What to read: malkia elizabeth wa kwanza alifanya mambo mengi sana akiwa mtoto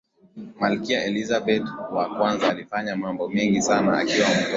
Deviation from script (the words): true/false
false